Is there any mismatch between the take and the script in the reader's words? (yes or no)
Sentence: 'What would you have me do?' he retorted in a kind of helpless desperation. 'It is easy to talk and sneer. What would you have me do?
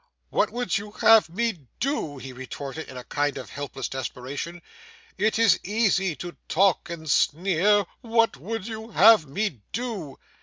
no